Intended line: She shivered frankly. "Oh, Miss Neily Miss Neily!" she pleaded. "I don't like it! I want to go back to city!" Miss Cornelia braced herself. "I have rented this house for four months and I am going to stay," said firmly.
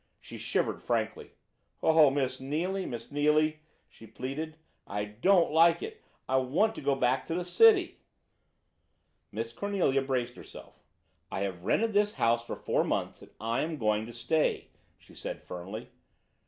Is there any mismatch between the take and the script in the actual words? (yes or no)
yes